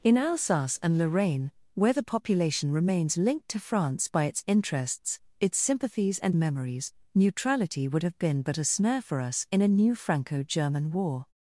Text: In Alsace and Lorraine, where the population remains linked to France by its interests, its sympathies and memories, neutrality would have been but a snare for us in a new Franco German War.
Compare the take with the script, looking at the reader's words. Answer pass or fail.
pass